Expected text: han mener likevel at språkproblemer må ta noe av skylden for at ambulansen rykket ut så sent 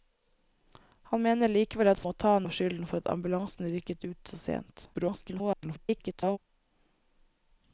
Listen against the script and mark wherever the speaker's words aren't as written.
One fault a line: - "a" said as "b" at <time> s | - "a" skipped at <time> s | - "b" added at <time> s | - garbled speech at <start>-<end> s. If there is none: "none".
- "språkproblemer" skipped at 2.0 s
- "noe" skipped at 2.3 s
- garbled speech at 4.9-6.4 s